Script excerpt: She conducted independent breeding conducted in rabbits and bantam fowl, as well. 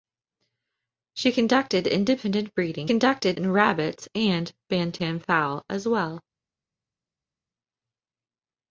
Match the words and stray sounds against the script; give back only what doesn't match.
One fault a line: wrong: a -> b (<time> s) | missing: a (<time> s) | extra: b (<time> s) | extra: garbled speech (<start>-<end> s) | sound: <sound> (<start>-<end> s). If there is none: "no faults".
no faults